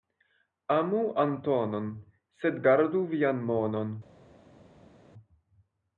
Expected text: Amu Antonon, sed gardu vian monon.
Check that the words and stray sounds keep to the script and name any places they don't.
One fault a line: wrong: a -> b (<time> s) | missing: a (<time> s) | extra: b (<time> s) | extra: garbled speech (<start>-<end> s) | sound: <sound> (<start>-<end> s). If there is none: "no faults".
no faults